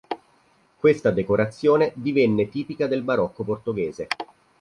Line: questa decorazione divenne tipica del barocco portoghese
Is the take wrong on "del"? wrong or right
right